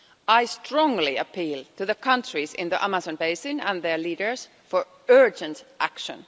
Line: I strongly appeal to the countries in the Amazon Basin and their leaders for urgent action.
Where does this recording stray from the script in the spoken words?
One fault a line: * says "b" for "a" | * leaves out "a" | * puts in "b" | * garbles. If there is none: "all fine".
all fine